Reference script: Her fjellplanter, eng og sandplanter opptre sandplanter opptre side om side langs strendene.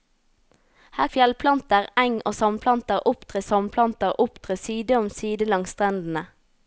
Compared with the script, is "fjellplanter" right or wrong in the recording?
right